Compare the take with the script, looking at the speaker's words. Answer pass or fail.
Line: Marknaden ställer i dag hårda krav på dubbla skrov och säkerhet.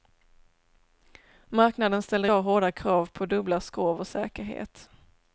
fail